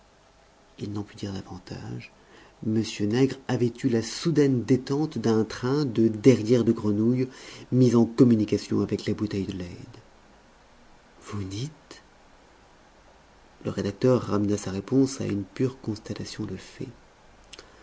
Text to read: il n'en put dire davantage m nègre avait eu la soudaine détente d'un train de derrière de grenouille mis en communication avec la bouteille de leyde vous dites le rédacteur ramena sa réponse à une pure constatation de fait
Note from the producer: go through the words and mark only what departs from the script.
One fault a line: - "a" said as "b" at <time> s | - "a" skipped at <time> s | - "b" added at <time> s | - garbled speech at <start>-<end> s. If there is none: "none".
none